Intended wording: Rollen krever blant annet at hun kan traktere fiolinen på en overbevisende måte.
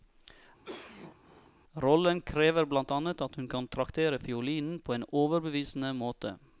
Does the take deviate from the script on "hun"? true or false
false